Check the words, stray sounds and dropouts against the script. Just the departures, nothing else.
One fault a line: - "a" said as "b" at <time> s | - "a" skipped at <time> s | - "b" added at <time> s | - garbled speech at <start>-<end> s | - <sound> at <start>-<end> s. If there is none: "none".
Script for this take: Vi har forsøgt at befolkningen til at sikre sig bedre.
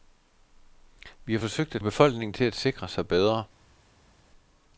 none